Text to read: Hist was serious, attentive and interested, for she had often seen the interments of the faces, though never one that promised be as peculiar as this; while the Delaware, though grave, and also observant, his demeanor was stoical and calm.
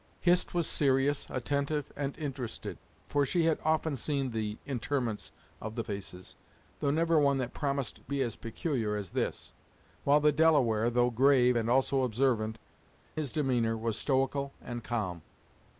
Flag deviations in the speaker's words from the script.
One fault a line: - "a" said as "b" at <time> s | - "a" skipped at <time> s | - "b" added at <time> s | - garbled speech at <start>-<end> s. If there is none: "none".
none